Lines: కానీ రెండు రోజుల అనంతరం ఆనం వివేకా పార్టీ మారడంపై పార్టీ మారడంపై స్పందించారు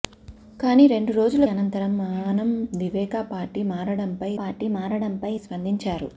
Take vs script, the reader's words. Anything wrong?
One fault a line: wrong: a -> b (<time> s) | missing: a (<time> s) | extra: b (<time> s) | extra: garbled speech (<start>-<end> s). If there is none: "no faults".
no faults